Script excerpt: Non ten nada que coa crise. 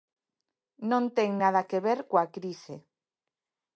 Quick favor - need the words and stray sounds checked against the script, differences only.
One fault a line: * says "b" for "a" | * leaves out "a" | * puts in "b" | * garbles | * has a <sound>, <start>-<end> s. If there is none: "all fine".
* puts in "ver"